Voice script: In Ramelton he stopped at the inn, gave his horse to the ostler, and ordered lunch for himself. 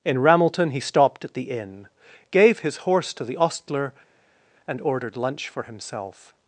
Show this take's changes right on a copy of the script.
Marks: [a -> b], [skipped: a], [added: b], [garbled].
In Ramelton he stopped at the inn, gave his horse to the ostler, and ordered lunch for himself.